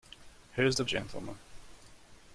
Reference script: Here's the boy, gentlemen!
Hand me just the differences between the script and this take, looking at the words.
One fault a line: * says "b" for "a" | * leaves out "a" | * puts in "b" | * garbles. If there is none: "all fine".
* leaves out "boy"